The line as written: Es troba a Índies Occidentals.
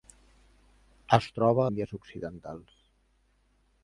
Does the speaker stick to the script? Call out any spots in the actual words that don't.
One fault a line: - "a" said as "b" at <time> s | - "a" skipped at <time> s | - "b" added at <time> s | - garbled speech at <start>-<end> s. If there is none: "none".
none